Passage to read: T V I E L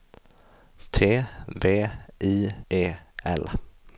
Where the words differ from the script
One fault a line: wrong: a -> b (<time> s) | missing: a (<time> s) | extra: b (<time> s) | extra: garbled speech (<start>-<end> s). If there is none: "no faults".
no faults